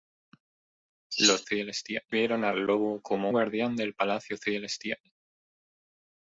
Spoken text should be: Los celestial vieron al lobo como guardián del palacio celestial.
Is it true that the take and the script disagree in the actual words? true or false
false